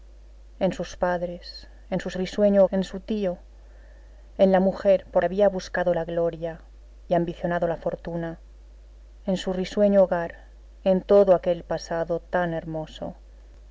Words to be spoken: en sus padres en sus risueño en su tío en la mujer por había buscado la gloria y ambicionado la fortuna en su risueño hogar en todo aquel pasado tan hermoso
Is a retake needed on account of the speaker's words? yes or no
no